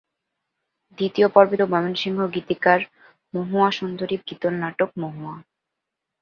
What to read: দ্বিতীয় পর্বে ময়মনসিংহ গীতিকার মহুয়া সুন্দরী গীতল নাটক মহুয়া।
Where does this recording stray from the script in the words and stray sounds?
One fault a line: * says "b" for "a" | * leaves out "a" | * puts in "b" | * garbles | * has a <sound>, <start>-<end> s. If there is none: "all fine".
all fine